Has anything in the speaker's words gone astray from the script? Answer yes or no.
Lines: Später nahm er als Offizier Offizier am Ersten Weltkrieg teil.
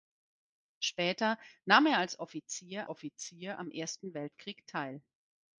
no